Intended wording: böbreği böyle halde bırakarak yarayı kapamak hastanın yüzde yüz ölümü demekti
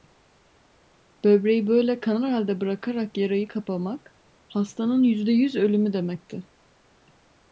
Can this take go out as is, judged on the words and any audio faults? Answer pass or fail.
fail